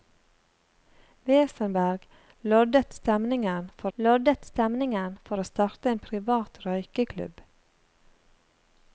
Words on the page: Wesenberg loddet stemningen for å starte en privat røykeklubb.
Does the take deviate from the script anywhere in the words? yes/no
yes